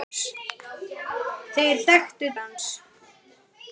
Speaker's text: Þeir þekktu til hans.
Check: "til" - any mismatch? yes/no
yes